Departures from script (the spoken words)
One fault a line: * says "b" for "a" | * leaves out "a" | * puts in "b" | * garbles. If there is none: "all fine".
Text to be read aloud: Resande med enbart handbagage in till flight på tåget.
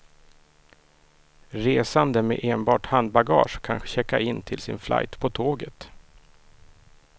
* puts in "kan checka"
* puts in "sin"